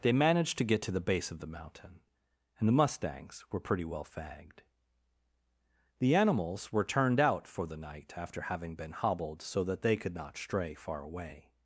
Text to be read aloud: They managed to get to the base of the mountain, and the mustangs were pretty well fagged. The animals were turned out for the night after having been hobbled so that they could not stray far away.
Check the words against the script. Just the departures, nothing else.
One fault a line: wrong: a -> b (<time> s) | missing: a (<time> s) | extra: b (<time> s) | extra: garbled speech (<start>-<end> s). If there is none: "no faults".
no faults